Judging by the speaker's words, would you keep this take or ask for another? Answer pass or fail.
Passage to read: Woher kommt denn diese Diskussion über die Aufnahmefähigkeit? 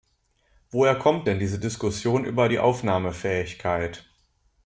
pass